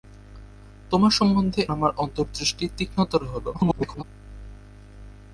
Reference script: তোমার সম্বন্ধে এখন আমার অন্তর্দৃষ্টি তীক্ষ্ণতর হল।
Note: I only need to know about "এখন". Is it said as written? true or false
false